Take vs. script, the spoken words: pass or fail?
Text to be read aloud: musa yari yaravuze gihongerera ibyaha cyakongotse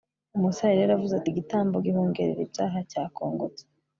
fail